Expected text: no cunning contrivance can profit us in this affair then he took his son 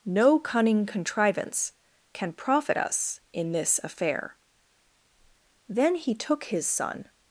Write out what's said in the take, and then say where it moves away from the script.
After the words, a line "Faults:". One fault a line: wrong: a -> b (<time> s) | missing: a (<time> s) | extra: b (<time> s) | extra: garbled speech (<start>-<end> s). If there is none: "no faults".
no cunning contrivance can profit us in this affair then he took his son
Faults:
no faults